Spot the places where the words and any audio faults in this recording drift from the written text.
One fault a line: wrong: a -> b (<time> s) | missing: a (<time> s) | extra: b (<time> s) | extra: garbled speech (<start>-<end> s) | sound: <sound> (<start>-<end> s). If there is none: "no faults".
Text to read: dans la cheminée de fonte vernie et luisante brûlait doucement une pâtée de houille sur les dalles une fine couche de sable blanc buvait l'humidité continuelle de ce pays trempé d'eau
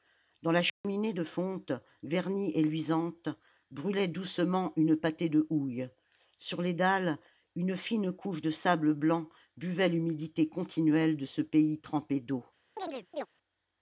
sound: dropout (0.7-0.8 s)
sound: chirp (12.8-13.3 s)